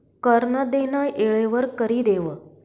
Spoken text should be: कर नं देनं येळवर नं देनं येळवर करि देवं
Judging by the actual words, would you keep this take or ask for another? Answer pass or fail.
fail